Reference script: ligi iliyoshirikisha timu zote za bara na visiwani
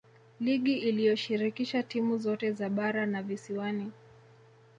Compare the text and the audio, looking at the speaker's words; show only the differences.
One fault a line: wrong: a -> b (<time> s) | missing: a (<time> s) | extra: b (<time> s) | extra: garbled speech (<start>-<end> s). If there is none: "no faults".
no faults